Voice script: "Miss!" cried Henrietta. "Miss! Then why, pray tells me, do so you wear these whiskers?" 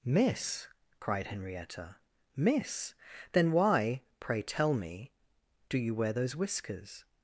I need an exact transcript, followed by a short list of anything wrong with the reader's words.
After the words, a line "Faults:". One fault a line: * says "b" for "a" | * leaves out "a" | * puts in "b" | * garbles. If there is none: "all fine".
"Miss!" cried Henrietta. "Miss! Then why, pray tell me, do you wear those whiskers?"
Faults:
* says "tell" for "tells"
* leaves out "so"
* says "those" for "these"